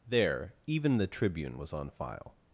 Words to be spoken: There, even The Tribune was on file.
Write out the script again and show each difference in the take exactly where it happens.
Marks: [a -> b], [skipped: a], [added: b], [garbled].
There, even The Tribune was on file.